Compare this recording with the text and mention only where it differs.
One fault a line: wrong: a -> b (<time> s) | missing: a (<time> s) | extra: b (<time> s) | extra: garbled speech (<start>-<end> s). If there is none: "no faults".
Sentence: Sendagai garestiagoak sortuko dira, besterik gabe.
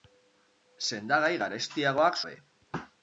missing: sortuko dira besterik (2.2 s)